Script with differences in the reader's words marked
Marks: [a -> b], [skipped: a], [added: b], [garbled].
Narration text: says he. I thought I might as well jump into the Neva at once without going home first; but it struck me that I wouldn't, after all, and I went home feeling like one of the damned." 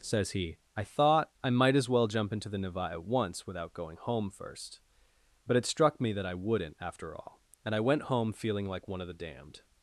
says he. I thought I might as well jump into the Neva at once without going home first; but it struck me that I wouldn't, after all, and I went home feeling like one of the damned."